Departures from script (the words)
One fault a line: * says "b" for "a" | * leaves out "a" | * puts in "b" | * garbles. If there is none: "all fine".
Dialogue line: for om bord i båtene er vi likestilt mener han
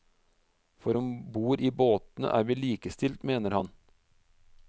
all fine